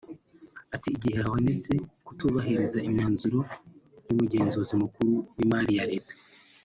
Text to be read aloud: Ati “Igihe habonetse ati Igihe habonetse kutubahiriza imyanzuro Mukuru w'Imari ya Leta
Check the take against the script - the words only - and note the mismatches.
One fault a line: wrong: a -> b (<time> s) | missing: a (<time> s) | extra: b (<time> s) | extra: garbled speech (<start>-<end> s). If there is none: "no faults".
missing: ati Igihe habonetse (1.7 s)
extra: y'Umugenzuzi (4.1 s)